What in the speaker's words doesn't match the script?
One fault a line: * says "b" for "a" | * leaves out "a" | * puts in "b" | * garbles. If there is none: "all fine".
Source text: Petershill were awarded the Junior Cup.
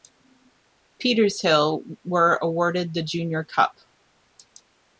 all fine